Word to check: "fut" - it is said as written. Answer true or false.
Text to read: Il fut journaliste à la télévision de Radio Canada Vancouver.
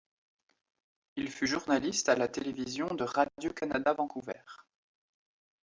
true